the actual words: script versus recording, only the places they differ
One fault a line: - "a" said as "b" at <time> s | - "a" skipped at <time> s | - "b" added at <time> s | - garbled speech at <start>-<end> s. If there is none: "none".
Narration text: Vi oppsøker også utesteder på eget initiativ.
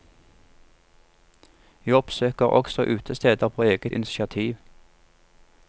none